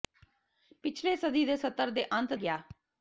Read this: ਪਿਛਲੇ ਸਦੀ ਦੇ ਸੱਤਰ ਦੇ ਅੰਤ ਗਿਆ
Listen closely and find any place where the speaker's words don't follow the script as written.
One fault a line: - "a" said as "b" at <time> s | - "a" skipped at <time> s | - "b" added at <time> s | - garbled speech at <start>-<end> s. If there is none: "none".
none